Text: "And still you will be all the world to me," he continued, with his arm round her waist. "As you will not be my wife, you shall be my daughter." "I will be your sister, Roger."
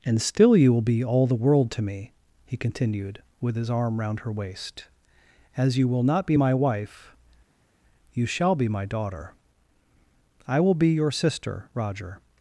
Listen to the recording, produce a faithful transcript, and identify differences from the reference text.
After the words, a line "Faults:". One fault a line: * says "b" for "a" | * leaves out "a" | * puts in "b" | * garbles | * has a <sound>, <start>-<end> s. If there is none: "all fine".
"And still you will be all the world to me," he continued, with his arm round her waist. "As you will not be my wife, you shall be my daughter." "I will be your sister, Roger."
Faults:
all fine